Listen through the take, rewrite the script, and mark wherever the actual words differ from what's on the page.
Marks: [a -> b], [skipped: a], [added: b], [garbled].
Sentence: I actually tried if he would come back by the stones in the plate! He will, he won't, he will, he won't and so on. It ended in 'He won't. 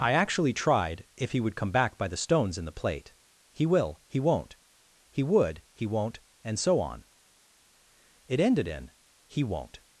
I actually tried if he would come back by the stones in the plate! He will, he won't, he [will, -> would] he won't and so on. It ended in 'He won't.